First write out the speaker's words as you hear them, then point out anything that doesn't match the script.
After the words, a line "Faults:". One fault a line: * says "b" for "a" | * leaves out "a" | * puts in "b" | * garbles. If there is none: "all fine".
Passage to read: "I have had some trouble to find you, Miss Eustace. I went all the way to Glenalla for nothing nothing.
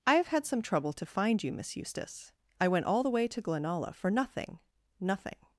"I have had some trouble to find you, Miss Eustace. I went all the way to Glenalla for nothing nothing.
Faults:
all fine